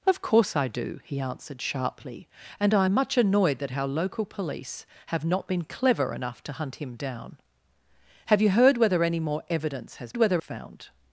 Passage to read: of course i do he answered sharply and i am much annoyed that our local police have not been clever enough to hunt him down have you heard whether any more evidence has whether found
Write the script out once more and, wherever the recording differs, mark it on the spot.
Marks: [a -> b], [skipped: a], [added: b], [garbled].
of course i do he answered sharply and i am much annoyed that our local police have not been clever enough to hunt him down have you heard whether any more evidence has whether found